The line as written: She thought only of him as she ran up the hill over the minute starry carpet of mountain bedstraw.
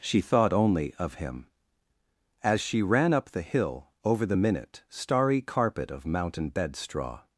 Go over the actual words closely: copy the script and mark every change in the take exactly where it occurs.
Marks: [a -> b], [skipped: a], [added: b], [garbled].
She thought only of him as she ran up the hill over the minute starry carpet of mountain bedstraw.